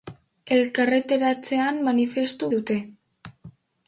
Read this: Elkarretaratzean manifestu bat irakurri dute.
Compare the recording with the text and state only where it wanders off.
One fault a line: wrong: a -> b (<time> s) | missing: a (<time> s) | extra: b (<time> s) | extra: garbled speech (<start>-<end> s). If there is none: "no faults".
missing: bat irakurri (2.5 s)